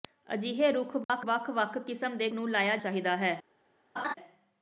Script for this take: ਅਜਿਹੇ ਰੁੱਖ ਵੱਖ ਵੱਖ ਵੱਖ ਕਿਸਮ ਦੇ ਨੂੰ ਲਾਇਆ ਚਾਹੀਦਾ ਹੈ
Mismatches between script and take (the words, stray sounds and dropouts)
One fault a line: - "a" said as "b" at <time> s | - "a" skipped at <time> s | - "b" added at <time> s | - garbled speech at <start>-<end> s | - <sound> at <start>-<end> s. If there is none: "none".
- dropout at 1.0-1.1 s
- laugh at 4.0-4.1 s